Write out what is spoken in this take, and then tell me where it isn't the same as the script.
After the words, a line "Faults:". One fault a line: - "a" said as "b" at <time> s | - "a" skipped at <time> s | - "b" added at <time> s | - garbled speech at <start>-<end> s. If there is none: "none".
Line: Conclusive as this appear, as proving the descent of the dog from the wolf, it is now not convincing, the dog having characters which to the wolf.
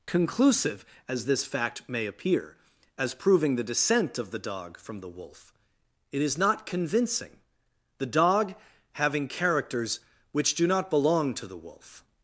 Conclusive as this fact may appear, as proving the descent of the dog from the wolf, it is not convincing, the dog having characters which do not belong to the wolf.
Faults:
- "fact may" added at 1.4 s
- "now" skipped at 6.4 s
- "do not belong" added at 10.6 s